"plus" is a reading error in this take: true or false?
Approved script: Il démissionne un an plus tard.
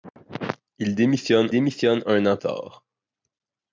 true